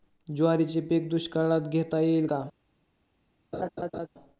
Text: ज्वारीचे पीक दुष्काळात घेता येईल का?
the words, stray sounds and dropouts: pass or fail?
fail